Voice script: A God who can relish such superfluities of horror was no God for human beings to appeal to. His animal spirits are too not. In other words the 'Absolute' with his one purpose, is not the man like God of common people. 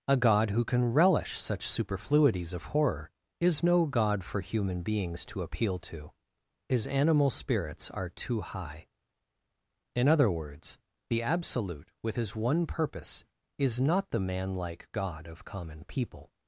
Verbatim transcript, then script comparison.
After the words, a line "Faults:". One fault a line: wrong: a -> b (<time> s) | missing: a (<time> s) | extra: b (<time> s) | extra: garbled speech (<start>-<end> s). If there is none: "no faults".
A God who can relish such superfluities of horror is no God for human beings to appeal to. His animal spirits are too high. In other words the 'Absolute' with his one purpose, is not the man like God of common people.
Faults:
wrong: was -> is (3.4 s)
wrong: not -> high (8.4 s)